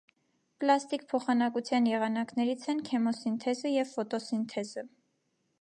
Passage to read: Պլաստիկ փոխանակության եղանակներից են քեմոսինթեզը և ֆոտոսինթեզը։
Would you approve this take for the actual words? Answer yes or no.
yes